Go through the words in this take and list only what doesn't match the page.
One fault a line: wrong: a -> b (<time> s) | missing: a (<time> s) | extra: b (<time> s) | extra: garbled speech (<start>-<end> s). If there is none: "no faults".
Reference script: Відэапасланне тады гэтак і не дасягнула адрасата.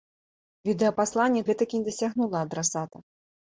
missing: тады (1.4 s)